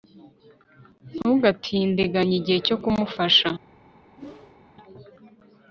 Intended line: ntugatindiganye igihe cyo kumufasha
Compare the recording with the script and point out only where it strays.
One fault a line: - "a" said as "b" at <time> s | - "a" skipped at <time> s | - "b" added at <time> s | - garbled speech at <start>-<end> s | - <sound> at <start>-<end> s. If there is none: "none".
- whoosh at 4.2-4.6 s